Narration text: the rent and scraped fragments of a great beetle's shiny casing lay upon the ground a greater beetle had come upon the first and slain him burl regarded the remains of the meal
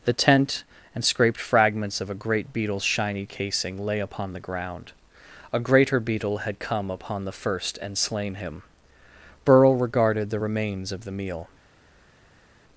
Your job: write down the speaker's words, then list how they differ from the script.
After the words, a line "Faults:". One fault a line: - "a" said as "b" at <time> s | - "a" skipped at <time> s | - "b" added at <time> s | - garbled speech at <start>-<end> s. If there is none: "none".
the tent and scraped fragments of a great beetle's shiny casing lay upon the ground a greater beetle had come upon the first and slain him burl regarded the remains of the meal
Faults:
- "rent" said as "tent" at 0.1 s